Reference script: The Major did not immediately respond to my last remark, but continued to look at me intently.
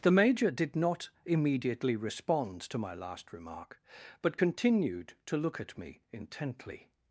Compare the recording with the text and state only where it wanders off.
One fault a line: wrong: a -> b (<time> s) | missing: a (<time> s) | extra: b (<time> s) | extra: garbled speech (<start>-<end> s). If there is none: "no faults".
no faults